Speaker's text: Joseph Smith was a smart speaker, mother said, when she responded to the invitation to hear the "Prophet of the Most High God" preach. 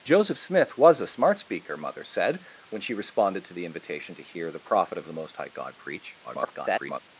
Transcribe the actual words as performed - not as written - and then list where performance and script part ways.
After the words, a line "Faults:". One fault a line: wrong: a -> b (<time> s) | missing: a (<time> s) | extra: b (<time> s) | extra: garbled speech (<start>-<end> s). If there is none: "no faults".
Joseph Smith was a smart speaker, mother said, when she responded to the invitation to hear the "Prophet of the Most High God" preach. [garbled]
Faults:
extra: garbled speech (6.2-7.0 s)